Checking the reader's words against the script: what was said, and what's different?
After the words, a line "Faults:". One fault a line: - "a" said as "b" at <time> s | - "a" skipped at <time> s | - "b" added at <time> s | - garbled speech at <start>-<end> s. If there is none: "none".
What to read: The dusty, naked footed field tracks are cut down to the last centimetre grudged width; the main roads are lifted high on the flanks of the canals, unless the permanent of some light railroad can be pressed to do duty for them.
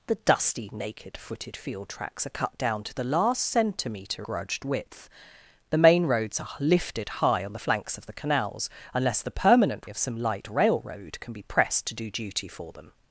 The dusty, naked footed field tracks are cut down to the last centimetre grudged width; the main roads are lifted high on the flanks of the canals, unless the permanent of some light railroad can be pressed to do duty for them.
Faults:
none